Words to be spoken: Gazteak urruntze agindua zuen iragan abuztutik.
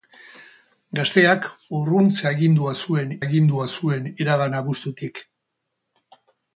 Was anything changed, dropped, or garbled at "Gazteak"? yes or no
no